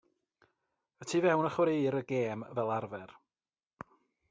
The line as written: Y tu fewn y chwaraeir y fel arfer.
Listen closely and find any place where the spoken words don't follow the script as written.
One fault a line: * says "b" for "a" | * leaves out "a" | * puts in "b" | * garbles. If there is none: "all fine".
* puts in "gêm"